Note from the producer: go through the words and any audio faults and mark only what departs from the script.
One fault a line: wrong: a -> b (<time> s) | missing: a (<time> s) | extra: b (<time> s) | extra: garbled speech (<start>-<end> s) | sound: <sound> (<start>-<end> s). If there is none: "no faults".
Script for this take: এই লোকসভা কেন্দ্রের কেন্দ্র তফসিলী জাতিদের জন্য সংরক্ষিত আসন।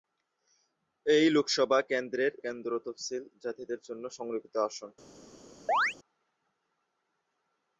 sound: chirp (5.7-5.9 s)